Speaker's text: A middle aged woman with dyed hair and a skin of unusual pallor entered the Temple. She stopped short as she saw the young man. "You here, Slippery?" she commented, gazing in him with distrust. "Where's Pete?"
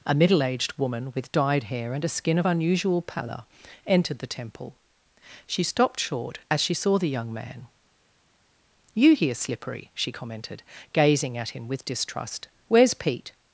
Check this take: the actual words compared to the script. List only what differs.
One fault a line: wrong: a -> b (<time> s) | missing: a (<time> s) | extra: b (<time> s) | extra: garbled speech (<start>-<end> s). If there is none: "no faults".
wrong: in -> at (11.4 s)